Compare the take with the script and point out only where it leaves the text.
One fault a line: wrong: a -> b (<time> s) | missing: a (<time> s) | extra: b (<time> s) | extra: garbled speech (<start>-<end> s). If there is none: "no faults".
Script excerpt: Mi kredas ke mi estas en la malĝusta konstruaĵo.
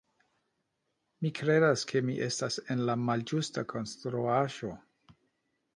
no faults